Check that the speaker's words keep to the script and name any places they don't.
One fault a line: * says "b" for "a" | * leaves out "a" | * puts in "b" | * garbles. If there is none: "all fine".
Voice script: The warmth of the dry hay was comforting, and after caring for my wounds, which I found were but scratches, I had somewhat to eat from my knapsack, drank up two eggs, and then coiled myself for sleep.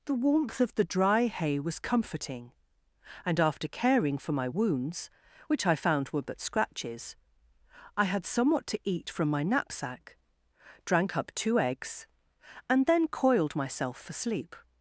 all fine